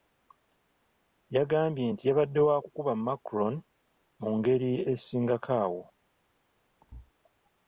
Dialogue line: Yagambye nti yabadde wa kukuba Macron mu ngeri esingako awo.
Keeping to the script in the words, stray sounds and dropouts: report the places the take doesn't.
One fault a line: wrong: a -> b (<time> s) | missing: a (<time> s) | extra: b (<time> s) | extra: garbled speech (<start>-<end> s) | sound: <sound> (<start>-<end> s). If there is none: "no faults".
sound: thud (6.8-7.1 s)